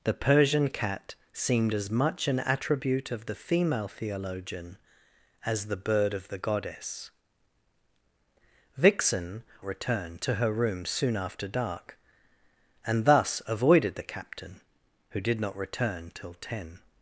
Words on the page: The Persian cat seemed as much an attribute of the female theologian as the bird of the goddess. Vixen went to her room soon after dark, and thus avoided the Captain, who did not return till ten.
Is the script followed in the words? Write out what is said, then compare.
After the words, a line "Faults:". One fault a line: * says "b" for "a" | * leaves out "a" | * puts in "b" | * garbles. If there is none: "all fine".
The Persian cat seemed as much an attribute of the female theologian as the bird of the goddess. Vixen return to her room soon after dark, and thus avoided the Captain, who did not return till ten.
Faults:
* says "return" for "went"